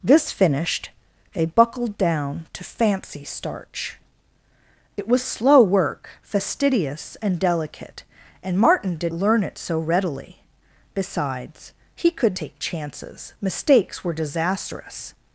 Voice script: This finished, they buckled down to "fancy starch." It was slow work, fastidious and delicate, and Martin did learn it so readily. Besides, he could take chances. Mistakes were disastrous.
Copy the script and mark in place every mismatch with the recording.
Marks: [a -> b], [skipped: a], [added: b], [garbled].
This finished, they buckled down to "fancy starch." It was slow work, fastidious and delicate, and Martin did learn it so readily. Besides, he could take chances. Mistakes were disastrous.